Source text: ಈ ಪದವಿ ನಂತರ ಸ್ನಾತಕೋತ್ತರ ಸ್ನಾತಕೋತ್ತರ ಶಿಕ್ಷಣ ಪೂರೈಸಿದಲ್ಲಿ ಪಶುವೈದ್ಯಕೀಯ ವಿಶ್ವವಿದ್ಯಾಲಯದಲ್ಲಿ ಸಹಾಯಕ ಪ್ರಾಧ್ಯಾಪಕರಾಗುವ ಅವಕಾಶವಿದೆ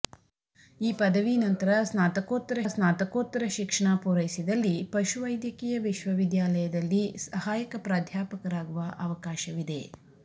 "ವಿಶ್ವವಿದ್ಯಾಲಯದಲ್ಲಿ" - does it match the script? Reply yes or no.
yes